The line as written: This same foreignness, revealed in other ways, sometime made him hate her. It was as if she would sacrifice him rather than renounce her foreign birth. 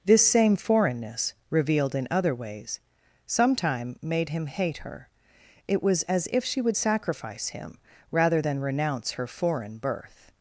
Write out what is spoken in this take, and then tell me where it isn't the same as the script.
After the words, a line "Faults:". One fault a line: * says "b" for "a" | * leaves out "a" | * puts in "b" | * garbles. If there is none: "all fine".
This same foreignness, revealed in other ways, sometime made him hate her. It was as if she would sacrifice him rather than renounce her foreign birth.
Faults:
all fine